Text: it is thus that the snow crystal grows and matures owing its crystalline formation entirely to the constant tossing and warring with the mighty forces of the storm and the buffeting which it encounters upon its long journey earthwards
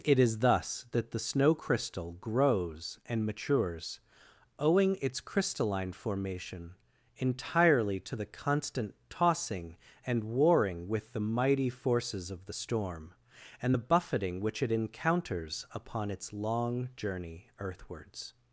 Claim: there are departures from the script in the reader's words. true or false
false